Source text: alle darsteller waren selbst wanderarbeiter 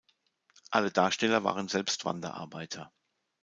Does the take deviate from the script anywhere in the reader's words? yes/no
no